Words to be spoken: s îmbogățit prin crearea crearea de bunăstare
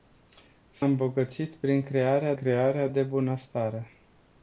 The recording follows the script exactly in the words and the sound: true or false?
true